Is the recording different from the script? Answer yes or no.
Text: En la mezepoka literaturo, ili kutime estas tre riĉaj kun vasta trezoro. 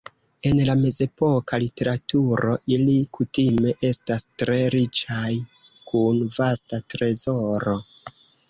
no